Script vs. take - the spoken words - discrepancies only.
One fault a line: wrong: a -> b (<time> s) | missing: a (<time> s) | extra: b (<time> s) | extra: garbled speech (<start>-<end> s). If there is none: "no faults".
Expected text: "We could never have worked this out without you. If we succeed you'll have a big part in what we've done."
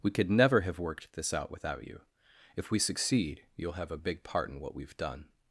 no faults